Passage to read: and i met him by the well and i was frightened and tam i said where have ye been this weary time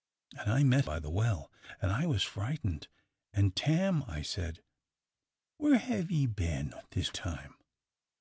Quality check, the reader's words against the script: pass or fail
fail